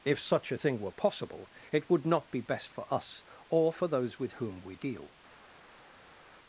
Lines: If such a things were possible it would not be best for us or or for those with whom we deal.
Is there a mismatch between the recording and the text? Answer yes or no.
yes